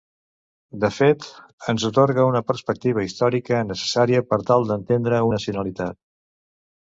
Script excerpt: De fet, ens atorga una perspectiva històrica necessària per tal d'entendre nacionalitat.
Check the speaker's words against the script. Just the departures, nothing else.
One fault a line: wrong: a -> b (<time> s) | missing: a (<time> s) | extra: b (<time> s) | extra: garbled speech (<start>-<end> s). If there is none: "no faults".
no faults